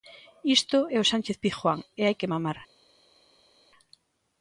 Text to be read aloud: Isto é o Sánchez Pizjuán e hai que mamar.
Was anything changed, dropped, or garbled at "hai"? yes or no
no